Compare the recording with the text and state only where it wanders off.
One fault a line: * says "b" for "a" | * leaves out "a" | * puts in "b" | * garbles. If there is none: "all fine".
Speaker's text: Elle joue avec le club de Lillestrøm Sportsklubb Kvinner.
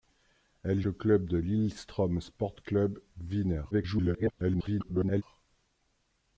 * leaves out "joue avec"
* garbles